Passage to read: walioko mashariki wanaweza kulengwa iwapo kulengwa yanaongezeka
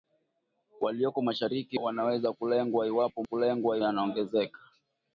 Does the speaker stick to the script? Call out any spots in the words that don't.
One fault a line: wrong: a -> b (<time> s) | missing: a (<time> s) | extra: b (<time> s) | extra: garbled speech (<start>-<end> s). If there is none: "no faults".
no faults